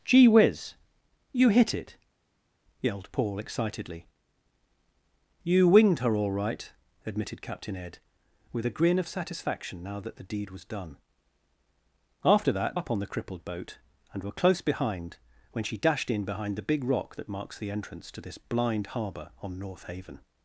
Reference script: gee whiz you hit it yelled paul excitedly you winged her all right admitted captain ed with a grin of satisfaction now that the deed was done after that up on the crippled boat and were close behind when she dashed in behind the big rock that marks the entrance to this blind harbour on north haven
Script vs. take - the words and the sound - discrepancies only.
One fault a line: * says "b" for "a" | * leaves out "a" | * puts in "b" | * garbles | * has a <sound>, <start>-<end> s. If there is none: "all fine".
all fine